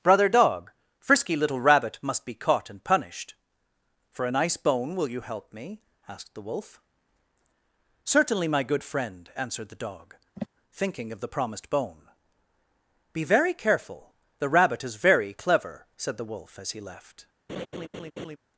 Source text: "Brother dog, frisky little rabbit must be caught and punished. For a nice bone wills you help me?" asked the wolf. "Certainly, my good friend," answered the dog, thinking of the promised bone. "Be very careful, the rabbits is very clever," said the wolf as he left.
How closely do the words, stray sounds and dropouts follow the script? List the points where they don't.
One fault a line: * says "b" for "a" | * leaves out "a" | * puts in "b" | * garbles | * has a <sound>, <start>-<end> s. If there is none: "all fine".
* says "will" for "wills"
* has a sigh, 10.4-10.5 s
* says "rabbit" for "rabbits"
* has a laugh, 17.5-18.4 s